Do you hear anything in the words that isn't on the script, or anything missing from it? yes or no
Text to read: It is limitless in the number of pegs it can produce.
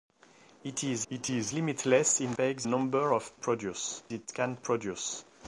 yes